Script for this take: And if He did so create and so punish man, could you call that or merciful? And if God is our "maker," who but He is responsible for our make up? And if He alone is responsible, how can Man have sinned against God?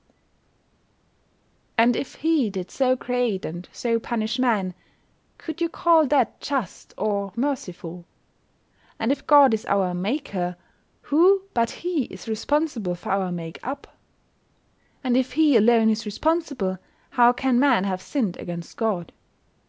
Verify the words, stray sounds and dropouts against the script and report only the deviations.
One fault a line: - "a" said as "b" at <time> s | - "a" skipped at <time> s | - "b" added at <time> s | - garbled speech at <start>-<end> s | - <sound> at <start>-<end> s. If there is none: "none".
- "just" added at 6.4 s